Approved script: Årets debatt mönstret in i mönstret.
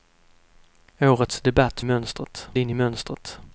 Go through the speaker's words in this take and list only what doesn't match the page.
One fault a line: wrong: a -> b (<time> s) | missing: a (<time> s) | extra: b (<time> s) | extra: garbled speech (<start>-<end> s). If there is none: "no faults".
no faults